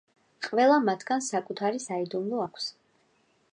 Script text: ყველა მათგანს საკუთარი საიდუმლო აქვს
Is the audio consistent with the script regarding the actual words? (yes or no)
yes